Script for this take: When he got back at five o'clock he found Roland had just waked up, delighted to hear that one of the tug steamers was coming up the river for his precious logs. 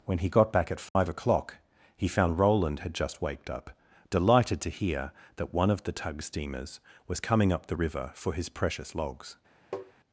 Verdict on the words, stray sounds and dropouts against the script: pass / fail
fail